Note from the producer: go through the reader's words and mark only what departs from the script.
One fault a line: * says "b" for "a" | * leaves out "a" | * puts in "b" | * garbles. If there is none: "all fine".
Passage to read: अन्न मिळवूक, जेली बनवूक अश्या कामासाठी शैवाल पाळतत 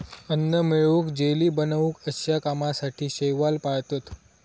all fine